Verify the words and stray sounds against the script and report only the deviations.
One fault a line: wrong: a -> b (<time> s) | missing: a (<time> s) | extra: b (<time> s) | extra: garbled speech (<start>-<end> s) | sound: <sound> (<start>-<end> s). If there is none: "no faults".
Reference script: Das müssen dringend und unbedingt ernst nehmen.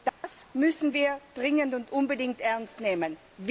sound: dropout (0.1-0.2 s)
extra: wir (0.9 s)